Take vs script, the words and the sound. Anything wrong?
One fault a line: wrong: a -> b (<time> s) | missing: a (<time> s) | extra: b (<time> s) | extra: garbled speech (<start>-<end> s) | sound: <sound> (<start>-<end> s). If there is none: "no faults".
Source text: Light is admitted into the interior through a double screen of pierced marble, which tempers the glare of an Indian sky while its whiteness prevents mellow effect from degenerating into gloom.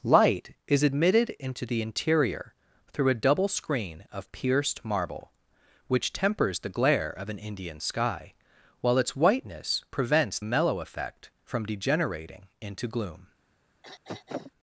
sound: throat clearing (13.8-14.5 s)